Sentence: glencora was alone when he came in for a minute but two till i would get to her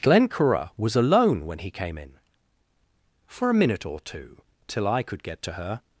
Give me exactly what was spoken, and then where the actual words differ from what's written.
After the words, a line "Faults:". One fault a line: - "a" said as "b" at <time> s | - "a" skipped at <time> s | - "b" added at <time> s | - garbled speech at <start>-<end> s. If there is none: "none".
glencora was alone when he came in for a minute or two till i could get to her
Faults:
- "but" said as "or" at 3.9 s
- "would" said as "could" at 5.0 s